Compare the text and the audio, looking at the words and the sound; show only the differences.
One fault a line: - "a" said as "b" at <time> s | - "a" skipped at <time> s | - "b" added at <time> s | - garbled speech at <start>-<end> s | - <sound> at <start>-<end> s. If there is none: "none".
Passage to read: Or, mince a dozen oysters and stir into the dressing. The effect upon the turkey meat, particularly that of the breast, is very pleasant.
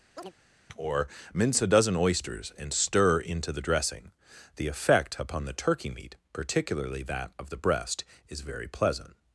- chirp at 0.2-0.3 s